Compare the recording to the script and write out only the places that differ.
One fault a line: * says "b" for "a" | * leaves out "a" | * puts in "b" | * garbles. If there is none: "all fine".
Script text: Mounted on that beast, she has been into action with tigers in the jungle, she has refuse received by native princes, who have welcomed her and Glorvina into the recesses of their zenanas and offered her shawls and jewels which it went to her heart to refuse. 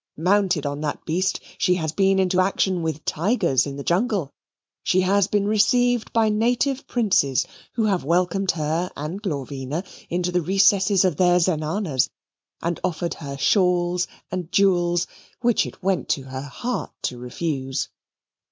* says "been" for "refuse"